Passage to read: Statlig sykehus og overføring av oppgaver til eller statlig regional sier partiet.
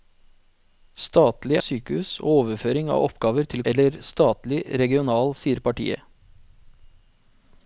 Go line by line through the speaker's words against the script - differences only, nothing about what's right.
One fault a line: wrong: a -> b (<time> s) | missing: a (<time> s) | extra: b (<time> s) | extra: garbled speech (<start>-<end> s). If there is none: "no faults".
no faults